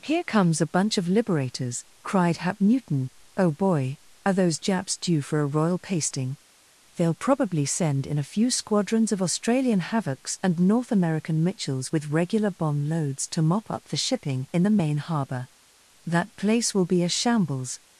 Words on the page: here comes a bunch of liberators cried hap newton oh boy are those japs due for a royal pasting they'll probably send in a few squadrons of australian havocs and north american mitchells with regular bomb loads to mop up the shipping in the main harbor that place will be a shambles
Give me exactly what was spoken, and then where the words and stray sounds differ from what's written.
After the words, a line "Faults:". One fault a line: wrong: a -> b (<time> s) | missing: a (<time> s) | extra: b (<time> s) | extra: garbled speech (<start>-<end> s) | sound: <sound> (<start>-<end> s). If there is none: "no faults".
here comes a bunch of liberators cried hap newton oh boy are those japs due for a royal pasting they'll probably send in a few squadrons of australian havocs and north american mitchells with regular bomb loads to mop up the shipping in the main harbor that place will be a shambles
Faults:
no faults